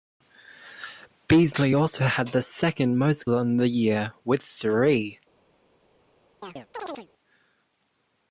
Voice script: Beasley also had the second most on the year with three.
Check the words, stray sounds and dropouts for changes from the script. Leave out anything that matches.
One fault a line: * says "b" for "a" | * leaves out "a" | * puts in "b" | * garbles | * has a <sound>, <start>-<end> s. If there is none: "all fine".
* has a chirp, 6.4-7.1 s